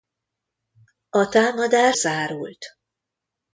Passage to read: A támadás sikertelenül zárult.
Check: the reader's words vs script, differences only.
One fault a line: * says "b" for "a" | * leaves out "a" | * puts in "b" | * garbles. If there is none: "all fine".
* leaves out "sikertelenül"